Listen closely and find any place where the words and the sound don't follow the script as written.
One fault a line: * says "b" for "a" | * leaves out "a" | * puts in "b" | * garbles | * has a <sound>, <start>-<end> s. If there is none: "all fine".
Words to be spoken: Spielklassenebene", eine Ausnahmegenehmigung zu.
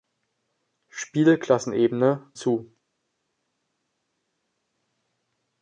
* leaves out "eine Ausnahmegenehmigung"